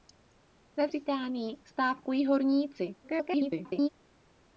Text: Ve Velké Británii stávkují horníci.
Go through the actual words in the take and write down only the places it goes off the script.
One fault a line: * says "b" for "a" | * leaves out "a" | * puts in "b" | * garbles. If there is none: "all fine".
* leaves out "Velké"
* garbles